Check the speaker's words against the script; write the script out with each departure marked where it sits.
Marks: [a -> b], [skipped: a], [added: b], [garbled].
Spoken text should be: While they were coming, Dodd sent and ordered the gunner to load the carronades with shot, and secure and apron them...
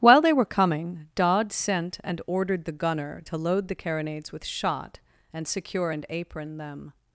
While they were coming, Dodd sent and ordered the gunner to load the carronades with shot, and secure and apron them...